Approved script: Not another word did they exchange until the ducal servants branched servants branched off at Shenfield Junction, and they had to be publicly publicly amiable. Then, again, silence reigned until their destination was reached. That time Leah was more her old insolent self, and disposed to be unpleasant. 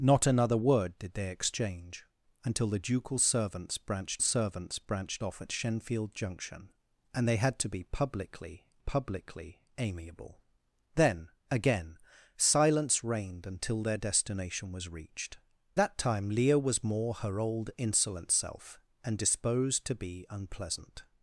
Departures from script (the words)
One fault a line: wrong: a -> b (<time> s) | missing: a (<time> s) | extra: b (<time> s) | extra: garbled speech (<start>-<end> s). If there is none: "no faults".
no faults